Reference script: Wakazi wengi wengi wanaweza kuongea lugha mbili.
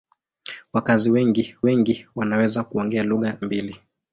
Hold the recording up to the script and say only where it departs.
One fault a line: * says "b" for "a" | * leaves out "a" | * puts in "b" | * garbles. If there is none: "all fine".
all fine